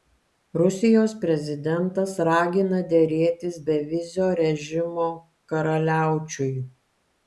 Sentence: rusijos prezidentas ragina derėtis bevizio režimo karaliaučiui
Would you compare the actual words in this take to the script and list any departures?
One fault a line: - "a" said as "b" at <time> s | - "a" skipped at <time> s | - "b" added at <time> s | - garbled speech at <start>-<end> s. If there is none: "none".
none